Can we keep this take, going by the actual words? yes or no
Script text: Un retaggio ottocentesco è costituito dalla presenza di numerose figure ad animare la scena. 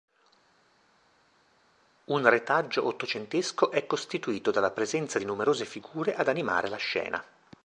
yes